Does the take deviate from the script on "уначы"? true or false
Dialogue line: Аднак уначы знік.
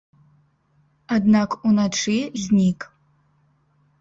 false